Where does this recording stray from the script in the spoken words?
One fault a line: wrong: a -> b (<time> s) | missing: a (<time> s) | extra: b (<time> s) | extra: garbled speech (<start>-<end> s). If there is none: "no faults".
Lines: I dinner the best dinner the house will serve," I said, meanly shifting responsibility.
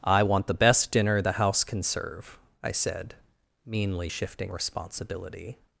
wrong: dinner -> want (0.2 s)
wrong: will -> can (1.6 s)